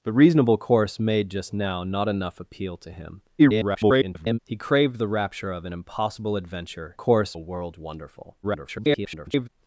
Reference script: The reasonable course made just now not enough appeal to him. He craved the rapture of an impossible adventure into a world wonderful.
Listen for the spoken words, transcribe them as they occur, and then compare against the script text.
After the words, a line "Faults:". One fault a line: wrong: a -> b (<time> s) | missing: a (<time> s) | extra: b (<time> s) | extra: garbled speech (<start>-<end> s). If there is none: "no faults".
The reasonable course made just now not enough appeal to him. [garbled] He craved the rapture of an impossible adventure course a world wonderful. [garbled]
Faults:
extra: garbled speech (3.4-4.4 s)
wrong: into -> course (6.9 s)
extra: garbled speech (8.4-9.5 s)